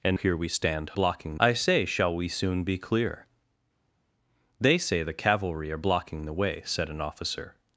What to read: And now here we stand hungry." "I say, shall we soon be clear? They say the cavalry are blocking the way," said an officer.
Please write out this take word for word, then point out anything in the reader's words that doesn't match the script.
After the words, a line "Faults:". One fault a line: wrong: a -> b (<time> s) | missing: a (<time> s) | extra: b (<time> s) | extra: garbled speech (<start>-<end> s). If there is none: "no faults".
And here we stand blocking." "I say, shall we soon be clear? They say the cavalry are blocking the way," said an officer.
Faults:
missing: now (0.2 s)
wrong: hungry -> blocking (0.9 s)